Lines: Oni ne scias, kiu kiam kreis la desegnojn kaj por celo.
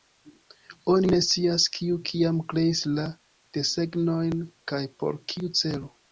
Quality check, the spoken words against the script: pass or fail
fail